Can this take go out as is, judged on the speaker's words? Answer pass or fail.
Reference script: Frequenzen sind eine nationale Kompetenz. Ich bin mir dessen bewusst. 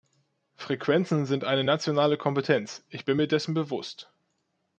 pass